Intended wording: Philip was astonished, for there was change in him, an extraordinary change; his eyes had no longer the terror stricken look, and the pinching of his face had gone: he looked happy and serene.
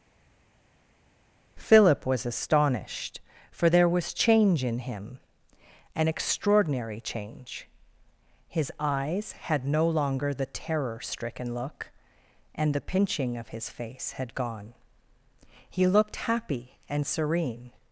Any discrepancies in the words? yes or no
no